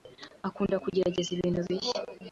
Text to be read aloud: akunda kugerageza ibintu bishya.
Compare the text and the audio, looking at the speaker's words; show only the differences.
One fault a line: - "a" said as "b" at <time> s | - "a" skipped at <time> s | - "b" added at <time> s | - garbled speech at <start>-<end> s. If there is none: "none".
none